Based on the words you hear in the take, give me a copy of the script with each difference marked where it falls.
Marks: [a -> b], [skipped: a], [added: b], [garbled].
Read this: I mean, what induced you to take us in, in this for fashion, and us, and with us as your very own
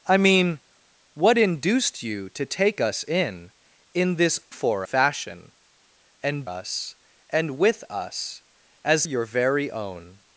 I mean, what induced you to take us in, in this for fashion, and us, and with us as your very own